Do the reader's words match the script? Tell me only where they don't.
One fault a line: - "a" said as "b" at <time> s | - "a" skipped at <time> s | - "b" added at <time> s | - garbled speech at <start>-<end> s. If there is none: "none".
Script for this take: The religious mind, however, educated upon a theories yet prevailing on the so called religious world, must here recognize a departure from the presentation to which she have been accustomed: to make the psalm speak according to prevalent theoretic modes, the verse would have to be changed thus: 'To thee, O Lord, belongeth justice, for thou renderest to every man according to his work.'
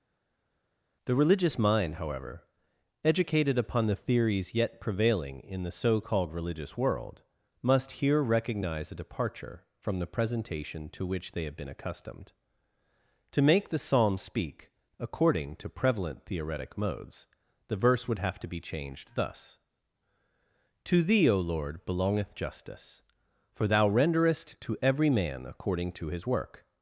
- "a" said as "the" at 3.9 s
- "on" said as "in" at 5.4 s
- "she" said as "they" at 11.3 s